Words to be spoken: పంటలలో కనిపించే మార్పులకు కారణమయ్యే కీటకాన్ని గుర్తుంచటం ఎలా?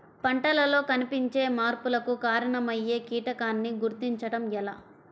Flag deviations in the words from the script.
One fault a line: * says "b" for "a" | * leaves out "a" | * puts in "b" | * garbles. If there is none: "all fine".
all fine